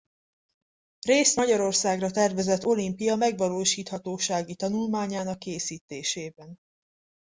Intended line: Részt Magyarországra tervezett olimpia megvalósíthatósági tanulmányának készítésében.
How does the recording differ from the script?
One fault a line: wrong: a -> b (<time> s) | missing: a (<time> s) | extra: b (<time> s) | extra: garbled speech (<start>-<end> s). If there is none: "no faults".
no faults